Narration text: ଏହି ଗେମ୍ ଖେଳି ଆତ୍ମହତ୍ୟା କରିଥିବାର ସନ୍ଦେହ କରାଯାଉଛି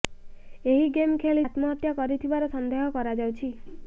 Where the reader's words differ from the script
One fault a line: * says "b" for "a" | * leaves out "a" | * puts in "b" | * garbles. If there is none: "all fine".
all fine